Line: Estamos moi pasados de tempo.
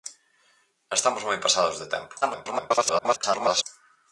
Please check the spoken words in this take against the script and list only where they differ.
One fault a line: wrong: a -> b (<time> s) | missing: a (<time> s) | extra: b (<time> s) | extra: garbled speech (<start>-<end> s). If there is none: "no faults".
extra: garbled speech (2.2-3.6 s)